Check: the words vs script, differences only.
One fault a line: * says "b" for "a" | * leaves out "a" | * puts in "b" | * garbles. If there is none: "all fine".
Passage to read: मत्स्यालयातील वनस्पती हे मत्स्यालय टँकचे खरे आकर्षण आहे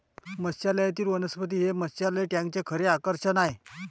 all fine